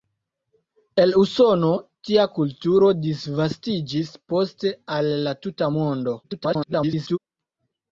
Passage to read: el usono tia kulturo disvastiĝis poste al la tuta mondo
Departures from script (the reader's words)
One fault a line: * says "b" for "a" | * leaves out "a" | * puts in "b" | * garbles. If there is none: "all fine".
* garbles